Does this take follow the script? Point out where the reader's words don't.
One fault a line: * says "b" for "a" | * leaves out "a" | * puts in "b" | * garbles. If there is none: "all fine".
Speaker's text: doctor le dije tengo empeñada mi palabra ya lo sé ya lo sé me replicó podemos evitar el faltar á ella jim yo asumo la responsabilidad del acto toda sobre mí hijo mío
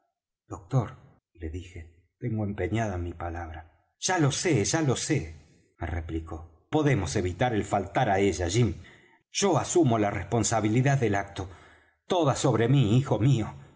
all fine